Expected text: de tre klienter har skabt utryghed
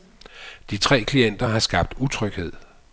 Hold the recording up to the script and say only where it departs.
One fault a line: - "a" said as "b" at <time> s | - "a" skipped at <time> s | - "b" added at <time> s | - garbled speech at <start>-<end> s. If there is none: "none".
none